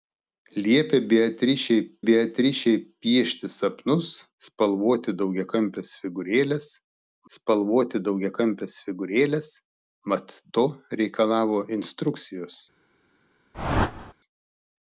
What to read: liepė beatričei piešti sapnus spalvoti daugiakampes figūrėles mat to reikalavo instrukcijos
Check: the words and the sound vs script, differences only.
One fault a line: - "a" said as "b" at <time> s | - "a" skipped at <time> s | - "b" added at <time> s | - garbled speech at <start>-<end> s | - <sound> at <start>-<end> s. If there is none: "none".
- "beatričei" added at 2.1 s
- "spalvoti daugiakampes figūrėles" added at 7.3 s
- whoosh at 13.5-14.1 s